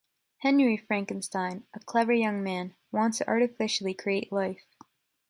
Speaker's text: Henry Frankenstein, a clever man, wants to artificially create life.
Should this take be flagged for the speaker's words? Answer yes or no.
yes